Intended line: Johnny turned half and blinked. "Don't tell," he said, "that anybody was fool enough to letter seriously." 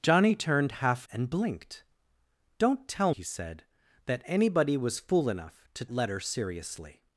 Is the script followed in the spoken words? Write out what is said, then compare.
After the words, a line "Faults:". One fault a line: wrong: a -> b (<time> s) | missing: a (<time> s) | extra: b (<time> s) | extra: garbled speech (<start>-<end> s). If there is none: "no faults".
Johnny turned half and blinked. "Don't tell," he said, "that anybody was fool enough to letter seriously."
Faults:
no faults